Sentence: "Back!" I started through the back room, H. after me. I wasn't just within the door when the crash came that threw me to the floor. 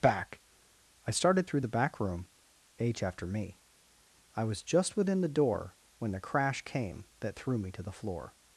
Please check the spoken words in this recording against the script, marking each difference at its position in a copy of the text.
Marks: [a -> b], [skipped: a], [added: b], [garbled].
"Back!" I started through the back room, H. after me. I [wasn't -> was] just within the door when the crash came that threw me to the floor.